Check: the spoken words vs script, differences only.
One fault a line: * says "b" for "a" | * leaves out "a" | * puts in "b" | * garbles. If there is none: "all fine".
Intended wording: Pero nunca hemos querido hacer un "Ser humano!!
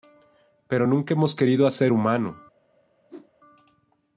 * leaves out "un Ser"